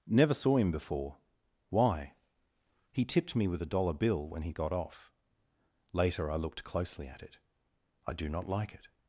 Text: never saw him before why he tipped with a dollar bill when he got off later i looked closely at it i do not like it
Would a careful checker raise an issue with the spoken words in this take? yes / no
yes